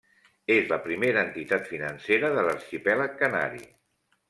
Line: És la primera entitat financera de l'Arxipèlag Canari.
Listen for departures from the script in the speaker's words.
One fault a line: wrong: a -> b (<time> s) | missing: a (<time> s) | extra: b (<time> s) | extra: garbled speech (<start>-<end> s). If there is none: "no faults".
no faults